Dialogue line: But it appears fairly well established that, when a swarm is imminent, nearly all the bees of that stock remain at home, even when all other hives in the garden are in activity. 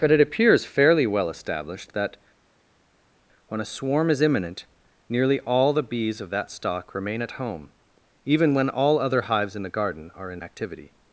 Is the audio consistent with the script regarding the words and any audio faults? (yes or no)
yes